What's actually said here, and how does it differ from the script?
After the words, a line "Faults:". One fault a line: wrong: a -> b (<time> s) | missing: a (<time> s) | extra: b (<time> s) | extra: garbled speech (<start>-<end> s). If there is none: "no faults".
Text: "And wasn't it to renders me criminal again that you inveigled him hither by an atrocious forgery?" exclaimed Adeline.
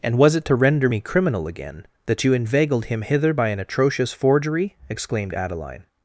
"And was it to render me criminal again that you inveigled him hither by an atrocious forgery?" exclaimed Adeline.
Faults:
wrong: wasn't -> was (0.2 s)
wrong: renders -> render (0.6 s)